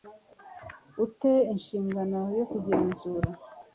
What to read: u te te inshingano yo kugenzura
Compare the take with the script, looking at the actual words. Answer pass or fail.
fail